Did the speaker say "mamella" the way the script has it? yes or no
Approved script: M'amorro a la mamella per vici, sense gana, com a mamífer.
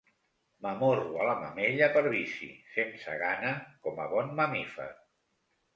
yes